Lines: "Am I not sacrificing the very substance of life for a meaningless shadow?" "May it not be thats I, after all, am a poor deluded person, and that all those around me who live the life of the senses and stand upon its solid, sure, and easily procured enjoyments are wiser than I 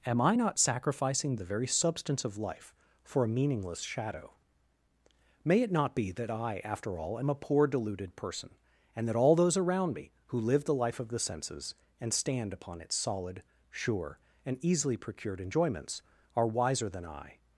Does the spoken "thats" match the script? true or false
false